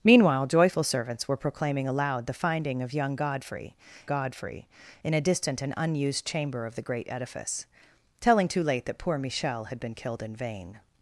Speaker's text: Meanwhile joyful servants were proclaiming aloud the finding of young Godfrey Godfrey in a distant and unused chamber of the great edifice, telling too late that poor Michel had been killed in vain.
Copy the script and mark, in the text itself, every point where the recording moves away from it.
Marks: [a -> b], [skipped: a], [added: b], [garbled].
Meanwhile joyful servants were proclaiming aloud the finding of young Godfrey Godfrey in a distant and unused chamber of the great edifice, telling too late that poor Michel had been killed in vain.